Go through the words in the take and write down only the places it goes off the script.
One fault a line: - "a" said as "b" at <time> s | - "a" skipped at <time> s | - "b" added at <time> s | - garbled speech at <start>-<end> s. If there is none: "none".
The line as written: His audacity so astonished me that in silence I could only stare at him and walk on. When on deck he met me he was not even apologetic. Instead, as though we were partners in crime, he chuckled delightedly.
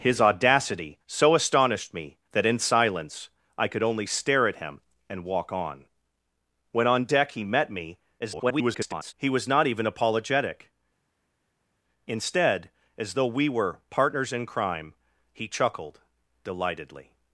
- garbled speech at 8.2-9.1 s